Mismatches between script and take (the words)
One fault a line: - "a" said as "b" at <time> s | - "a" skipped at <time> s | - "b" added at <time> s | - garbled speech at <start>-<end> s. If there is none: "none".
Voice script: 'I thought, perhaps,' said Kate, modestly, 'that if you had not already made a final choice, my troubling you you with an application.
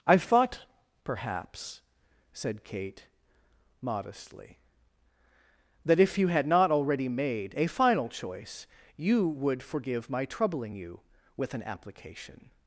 - "you would forgive" added at 9.0 s
- "you" skipped at 11.0 s